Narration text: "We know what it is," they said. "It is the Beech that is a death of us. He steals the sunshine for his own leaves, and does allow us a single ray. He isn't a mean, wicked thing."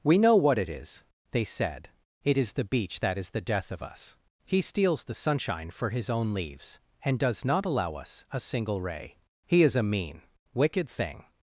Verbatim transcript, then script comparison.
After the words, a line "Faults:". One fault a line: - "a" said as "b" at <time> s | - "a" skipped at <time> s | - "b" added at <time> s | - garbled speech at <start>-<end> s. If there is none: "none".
"We know what it is," they said. "It is the Beech that is the death of us. He steals the sunshine for his own leaves, and does not allow us a single ray. He is a mean, wicked thing."
Faults:
- "a" said as "the" at 3.3 s
- "not" added at 7.5 s
- "isn't" said as "is" at 9.6 s